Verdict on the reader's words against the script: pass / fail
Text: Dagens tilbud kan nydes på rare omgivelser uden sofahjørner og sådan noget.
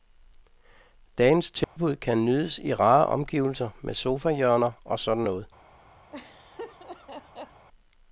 fail